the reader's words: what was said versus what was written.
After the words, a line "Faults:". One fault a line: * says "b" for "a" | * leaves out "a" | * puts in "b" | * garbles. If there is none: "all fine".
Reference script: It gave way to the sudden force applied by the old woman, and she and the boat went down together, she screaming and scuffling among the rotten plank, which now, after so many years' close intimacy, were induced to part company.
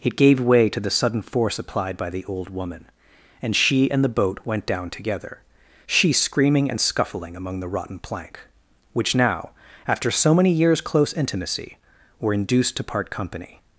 It gave way to the sudden force applied by the old woman, and she and the boat went down together, she screaming and scuffling among the rotten plank, which now, after so many years' close intimacy, were induced to part company.
Faults:
all fine